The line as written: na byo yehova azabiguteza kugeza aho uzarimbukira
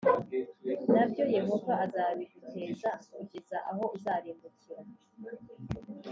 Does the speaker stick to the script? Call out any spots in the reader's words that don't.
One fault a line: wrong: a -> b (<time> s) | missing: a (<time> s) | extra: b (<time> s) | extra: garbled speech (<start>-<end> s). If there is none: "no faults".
no faults